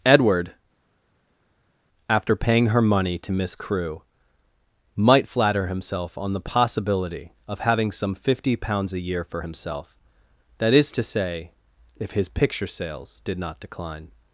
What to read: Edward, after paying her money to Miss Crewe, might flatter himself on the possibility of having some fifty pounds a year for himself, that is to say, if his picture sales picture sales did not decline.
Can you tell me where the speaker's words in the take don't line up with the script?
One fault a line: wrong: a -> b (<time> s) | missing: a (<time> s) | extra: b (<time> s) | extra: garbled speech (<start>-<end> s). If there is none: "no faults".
missing: picture sales (13.2 s)